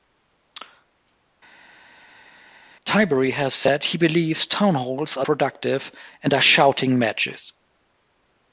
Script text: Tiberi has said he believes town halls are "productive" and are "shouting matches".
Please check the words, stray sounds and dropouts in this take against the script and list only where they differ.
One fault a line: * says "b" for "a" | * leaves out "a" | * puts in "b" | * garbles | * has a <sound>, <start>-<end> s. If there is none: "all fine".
all fine